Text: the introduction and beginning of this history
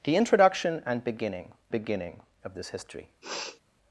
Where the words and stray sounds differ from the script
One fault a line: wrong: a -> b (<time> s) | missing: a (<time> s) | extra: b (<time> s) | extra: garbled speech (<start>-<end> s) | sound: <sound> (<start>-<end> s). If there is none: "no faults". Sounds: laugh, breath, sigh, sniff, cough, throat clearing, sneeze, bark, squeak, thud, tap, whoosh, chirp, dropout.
extra: beginning (1.7 s)
sound: sniff (3.2-3.6 s)